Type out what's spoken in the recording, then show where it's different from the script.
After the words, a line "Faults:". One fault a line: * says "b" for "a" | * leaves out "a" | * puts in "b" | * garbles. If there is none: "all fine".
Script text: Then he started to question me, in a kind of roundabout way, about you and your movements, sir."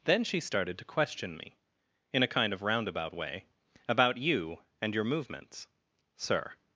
Then she started to question me, in a kind of roundabout way, about you and your movements, sir."
Faults:
* says "she" for "he"